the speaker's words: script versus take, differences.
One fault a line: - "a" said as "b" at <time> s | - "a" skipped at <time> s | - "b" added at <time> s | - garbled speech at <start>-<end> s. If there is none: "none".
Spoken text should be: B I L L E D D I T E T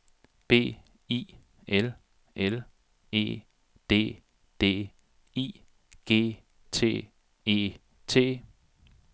- "G" added at 6.1 s